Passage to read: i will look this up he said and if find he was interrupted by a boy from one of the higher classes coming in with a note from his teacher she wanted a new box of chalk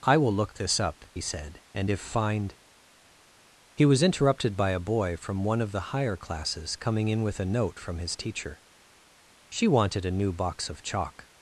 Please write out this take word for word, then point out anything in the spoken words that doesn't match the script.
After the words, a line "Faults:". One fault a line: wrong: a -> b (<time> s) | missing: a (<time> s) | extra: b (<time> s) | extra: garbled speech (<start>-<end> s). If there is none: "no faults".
i will look this up he said and if find he was interrupted by a boy from one of the higher classes coming in with a note from his teacher she wanted a new box of chalk
Faults:
no faults